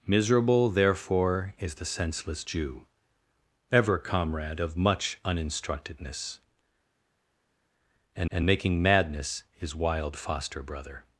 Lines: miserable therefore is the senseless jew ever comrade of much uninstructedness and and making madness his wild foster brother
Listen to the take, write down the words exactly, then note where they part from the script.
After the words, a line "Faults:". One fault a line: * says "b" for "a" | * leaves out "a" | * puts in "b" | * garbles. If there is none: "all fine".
miserable therefore is the senseless jew ever comrade of much uninstructedness and and making madness his wild foster brother
Faults:
all fine